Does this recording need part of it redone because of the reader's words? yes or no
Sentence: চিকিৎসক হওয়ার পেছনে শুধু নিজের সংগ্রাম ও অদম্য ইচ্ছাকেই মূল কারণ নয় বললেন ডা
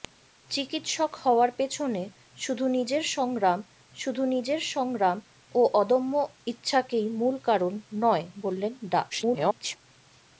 yes